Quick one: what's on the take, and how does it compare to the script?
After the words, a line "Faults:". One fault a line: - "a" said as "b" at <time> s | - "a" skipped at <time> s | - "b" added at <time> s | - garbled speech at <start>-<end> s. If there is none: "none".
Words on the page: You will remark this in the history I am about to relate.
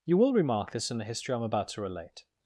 You will remark this in the history I am about to relate.
Faults:
none